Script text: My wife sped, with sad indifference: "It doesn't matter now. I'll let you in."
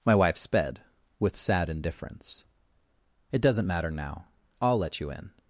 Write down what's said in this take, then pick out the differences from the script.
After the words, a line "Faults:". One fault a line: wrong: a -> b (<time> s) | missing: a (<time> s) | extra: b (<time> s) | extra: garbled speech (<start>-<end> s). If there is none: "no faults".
My wife sped, with sad indifference: "It doesn't matter now. I'll let you in."
Faults:
no faults